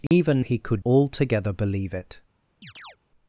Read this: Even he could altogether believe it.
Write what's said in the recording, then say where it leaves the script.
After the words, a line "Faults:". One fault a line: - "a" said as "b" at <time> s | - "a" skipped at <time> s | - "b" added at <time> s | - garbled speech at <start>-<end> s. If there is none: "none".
Even he could altogether believe it.
Faults:
none